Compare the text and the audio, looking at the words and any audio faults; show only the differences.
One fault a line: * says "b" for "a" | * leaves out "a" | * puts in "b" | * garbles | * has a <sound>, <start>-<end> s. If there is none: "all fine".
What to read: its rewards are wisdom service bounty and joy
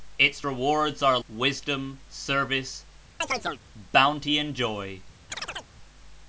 * has a chirp, 3.2-3.6 s
* has a chirp, 5.3-5.7 s